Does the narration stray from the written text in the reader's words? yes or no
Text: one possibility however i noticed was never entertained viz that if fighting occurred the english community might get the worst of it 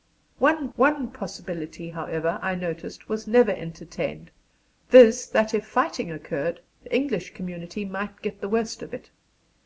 yes